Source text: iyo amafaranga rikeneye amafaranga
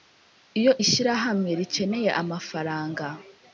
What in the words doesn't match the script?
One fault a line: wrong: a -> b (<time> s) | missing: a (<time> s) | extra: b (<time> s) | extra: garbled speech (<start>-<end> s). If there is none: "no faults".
wrong: amafaranga -> ishyirahamwe (0.8 s)